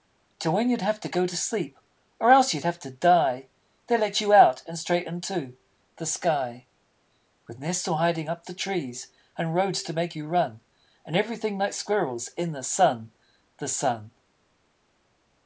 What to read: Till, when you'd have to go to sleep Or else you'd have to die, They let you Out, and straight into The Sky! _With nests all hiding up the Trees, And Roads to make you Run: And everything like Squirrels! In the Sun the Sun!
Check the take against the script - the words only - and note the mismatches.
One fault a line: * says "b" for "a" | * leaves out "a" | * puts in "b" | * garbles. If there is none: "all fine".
all fine